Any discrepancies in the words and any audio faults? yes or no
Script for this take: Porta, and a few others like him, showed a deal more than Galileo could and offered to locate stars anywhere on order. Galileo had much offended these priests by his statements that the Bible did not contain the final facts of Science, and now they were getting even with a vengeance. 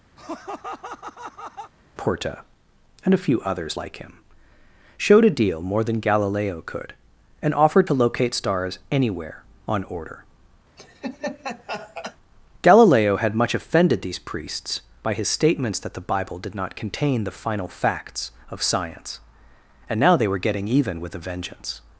yes